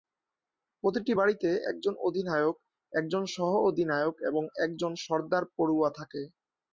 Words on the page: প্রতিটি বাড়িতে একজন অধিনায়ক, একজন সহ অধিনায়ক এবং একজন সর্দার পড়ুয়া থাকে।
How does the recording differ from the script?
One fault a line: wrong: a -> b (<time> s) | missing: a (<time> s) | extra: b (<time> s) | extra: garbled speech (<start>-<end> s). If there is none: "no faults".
no faults